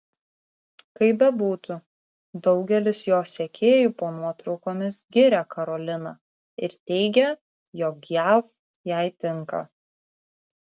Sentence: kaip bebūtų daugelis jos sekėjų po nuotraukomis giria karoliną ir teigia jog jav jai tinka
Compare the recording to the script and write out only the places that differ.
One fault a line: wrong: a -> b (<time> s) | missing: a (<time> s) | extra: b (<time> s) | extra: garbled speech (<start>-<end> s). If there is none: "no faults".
no faults